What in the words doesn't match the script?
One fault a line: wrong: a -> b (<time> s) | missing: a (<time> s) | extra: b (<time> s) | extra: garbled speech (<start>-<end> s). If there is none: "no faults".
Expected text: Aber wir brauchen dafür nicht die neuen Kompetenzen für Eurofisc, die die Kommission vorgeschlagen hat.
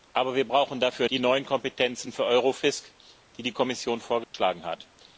missing: nicht (1.1 s)